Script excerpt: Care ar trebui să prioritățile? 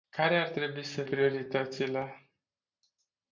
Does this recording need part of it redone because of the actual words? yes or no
no